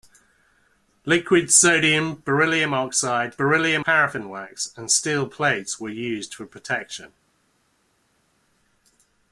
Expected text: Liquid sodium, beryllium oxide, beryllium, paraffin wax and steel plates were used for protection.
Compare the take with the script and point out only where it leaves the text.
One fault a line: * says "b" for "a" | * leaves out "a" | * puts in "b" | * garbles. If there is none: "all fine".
all fine